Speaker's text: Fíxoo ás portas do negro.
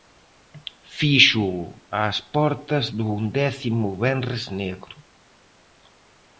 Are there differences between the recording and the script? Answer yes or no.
yes